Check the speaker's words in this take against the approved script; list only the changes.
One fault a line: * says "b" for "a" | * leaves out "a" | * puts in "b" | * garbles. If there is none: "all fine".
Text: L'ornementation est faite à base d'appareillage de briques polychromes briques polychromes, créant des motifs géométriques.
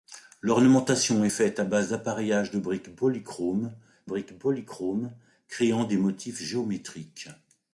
all fine